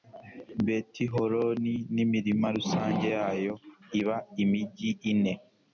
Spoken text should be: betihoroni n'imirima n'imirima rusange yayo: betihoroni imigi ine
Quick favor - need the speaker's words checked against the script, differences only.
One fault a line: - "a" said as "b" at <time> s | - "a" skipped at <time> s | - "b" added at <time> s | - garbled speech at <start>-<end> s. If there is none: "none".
- "n'imirima" skipped at 2.5 s
- "betihoroni" said as "iba" at 4.0 s